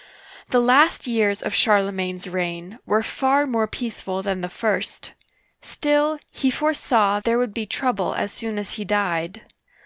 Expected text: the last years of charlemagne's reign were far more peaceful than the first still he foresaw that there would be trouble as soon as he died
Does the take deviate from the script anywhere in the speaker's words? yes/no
yes